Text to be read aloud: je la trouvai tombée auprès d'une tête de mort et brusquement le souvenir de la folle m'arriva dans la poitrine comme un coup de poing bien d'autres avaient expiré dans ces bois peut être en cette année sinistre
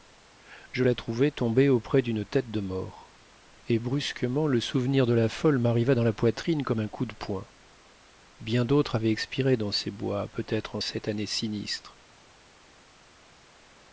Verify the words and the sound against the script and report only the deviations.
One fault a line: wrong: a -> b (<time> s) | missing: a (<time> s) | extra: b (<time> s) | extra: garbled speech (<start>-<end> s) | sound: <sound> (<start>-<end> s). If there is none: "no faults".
no faults